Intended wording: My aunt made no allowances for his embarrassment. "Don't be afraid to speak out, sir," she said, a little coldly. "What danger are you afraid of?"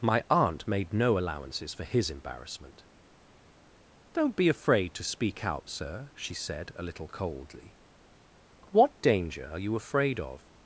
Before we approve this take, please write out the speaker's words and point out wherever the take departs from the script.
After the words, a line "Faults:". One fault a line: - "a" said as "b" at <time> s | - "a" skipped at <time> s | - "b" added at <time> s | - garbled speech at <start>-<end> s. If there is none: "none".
My aunt made no allowances for his embarrassment. "Don't be afraid to speak out, sir," she said, a little coldly. "What danger are you afraid of?"
Faults:
none